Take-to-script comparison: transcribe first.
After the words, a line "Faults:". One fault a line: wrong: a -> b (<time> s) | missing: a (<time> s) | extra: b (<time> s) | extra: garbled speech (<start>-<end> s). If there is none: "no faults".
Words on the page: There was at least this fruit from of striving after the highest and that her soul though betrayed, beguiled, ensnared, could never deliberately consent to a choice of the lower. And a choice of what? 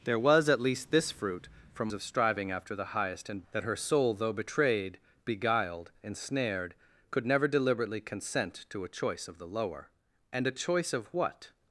There was at least this fruit from of striving after the highest and that her soul though betrayed, beguiled, ensnared, could never deliberately consent to a choice of the lower. And a choice of what?
Faults:
no faults